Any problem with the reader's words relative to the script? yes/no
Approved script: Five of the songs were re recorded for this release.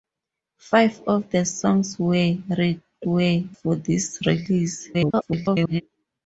yes